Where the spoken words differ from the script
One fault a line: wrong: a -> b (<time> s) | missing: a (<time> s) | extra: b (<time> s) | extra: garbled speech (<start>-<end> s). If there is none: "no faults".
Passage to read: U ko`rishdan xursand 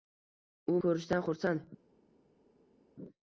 no faults